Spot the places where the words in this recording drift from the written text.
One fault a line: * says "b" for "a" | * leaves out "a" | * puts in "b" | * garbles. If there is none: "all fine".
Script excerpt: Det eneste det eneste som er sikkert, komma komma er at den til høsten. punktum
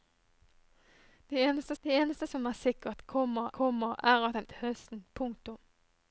all fine